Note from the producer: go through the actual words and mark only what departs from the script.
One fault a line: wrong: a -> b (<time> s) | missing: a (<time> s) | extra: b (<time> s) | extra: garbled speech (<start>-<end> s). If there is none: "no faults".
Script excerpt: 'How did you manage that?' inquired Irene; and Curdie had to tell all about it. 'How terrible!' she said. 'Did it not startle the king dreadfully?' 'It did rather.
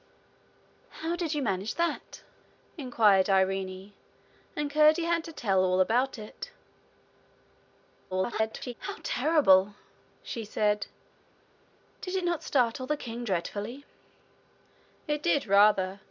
extra: garbled speech (8.1-8.7 s)